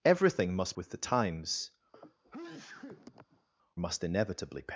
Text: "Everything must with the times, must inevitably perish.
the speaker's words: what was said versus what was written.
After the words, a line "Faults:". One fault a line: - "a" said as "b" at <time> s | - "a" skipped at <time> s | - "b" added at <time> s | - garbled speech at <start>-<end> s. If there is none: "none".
"Everything must with the times, must inevitably perish.
Faults:
none